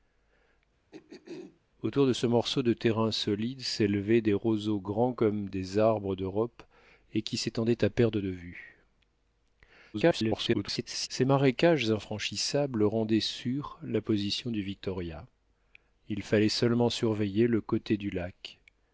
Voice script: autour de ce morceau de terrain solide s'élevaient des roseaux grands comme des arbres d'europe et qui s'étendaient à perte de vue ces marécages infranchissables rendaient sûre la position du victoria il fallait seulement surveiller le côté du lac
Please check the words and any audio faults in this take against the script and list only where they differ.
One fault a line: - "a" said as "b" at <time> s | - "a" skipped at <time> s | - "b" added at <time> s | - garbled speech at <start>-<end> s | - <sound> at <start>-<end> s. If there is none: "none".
- throat clearing at 0.9-1.6 s
- garbled speech at 9.9-11.1 s